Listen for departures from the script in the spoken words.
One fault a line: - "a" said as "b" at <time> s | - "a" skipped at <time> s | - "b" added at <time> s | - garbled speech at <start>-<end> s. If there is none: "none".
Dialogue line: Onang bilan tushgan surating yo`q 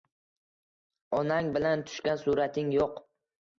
none